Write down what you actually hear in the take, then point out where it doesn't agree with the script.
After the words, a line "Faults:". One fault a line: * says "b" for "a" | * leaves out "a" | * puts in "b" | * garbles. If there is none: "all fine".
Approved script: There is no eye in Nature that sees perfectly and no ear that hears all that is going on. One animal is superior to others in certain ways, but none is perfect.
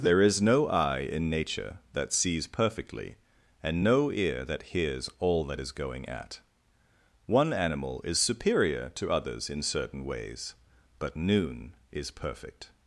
There is no eye in Nature that sees perfectly and no ear that hears all that is going at. One animal is superior to others in certain ways, but noon is perfect.
Faults:
* says "at" for "on"
* says "noon" for "none"